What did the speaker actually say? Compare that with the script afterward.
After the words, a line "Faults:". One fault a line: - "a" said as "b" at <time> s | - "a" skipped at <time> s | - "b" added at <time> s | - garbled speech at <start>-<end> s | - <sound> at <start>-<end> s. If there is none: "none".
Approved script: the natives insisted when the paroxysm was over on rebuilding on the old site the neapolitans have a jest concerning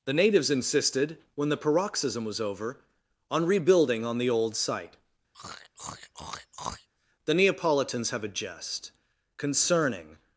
the natives insisted when the paroxysm was over on rebuilding on the old site the neapolitans have a jest concerning
Faults:
- throat clearing at 5.3-6.9 s